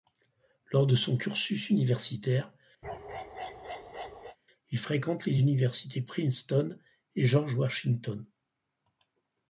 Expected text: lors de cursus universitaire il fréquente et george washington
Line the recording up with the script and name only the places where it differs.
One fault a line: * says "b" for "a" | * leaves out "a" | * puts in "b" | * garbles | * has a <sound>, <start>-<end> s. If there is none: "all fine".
* puts in "son"
* has a bark, 2.8-4.4 s
* puts in "les universités princeton"